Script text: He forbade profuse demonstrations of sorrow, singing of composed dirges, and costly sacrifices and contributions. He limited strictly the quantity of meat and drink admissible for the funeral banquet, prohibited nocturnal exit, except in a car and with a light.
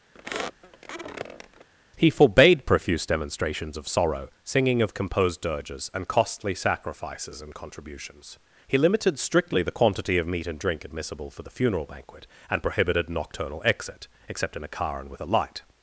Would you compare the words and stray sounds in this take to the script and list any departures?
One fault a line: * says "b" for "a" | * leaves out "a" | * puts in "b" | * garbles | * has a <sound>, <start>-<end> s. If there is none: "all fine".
* has a squeak, 0.1-1.7 s
* puts in "and"